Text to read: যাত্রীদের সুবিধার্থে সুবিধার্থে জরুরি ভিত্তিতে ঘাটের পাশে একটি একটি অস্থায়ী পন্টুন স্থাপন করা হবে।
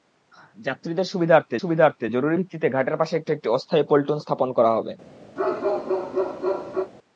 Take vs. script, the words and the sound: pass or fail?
fail